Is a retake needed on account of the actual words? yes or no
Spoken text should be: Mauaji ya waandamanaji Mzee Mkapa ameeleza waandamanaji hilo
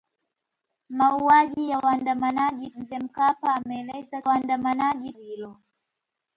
no